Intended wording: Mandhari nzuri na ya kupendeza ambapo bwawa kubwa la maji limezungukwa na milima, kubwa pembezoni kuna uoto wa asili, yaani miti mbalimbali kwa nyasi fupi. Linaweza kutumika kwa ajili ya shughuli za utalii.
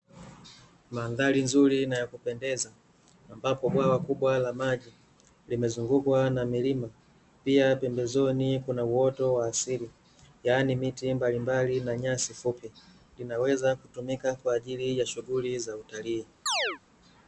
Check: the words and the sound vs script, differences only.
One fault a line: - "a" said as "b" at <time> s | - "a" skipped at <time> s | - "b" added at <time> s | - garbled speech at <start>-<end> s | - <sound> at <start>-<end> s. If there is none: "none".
- "kubwa" said as "pia" at 7.4 s
- "kwa" said as "na" at 11.8 s
- chirp at 16.5-16.8 s